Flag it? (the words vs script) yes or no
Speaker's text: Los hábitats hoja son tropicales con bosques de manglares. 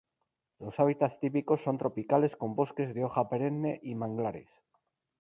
yes